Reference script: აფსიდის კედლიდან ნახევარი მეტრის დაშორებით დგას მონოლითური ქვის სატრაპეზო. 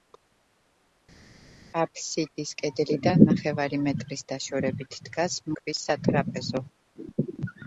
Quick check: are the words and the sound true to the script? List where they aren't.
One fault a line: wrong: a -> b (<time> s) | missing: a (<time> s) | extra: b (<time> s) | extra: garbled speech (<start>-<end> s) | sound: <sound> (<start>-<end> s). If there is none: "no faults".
missing: მონოლითური (5.4 s)